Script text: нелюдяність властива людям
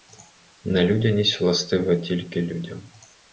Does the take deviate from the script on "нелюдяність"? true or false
false